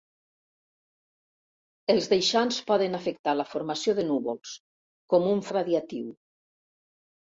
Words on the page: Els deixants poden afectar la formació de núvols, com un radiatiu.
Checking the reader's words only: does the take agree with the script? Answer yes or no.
yes